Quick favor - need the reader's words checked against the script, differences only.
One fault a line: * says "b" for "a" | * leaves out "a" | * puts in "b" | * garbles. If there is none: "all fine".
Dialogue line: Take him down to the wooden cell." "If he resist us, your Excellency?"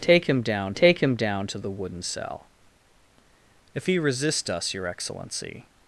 * puts in "take him down"